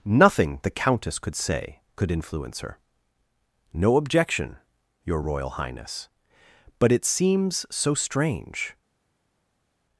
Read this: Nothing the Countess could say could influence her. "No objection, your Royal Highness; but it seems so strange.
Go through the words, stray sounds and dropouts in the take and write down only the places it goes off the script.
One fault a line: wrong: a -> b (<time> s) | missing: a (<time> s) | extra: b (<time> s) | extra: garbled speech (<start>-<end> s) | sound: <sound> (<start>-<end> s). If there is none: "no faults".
no faults